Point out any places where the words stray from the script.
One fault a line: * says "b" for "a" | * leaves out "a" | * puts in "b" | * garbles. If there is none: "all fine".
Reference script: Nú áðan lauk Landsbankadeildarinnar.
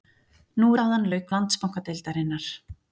all fine